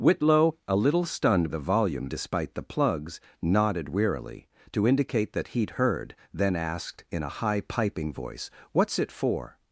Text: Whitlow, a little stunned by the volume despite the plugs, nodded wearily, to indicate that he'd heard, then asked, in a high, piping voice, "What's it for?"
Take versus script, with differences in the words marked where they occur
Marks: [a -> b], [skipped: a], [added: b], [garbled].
Whitlow, a little stunned [skipped: by] the volume despite the plugs, nodded wearily, to indicate that he'd heard, then asked, in a high, piping voice, "What's it for?"